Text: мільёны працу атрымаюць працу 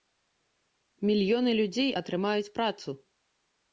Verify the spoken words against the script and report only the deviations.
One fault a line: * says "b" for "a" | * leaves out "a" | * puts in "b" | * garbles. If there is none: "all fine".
* says "людзей" for "працу"